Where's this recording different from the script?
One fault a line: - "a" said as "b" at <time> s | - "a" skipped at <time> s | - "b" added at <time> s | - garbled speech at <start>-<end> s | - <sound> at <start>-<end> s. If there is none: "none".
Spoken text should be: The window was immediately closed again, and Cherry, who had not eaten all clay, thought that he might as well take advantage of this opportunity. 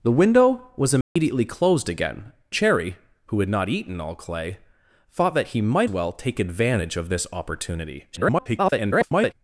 - dropout at 1.0-1.2 s
- "and" skipped at 2.3 s
- "as" skipped at 5.9 s
- garbled speech at 8.1-9.3 s